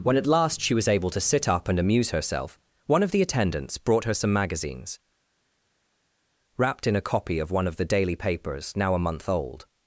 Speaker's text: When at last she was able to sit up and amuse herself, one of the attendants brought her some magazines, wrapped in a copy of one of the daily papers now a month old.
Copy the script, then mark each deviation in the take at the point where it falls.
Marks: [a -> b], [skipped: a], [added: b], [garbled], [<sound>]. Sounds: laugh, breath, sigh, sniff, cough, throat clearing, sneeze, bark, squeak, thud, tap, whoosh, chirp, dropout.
When at last she was able to sit up and amuse herself, one of the attendants brought her some magazines, wrapped in a copy of one of the daily papers now a month old.